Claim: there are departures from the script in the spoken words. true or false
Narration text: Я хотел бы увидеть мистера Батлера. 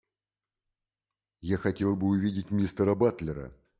false